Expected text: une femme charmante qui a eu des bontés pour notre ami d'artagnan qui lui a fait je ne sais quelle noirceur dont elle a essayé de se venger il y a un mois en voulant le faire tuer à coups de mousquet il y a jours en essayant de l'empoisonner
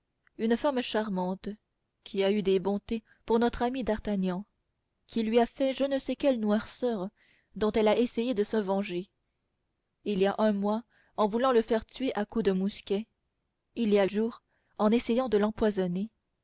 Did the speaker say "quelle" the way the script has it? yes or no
yes